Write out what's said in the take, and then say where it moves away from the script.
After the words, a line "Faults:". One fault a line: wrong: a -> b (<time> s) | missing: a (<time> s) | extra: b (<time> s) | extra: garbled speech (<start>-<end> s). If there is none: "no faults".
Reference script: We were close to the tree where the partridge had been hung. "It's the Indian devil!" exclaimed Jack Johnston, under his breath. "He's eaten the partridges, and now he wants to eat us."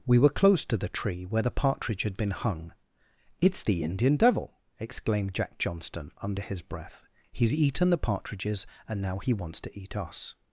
We were close to the tree where the partridge had been hung. "It's the Indian devil!" exclaimed Jack Johnston, under his breath. "He's eaten the partridges, and now he wants to eat us."
Faults:
no faults